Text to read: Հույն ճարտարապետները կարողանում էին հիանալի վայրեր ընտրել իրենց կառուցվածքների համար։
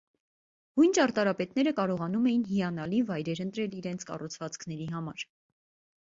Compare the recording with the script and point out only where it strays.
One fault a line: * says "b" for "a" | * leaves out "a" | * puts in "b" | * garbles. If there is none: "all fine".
all fine